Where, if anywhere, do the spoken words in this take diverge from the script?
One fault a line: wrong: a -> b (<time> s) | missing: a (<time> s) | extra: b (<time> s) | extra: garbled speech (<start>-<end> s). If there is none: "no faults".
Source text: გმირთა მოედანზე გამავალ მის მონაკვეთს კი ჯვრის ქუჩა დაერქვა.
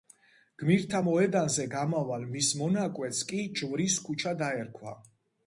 no faults